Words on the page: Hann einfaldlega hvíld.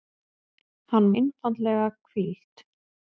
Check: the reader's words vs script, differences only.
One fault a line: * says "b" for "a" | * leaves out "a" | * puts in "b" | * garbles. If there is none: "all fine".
all fine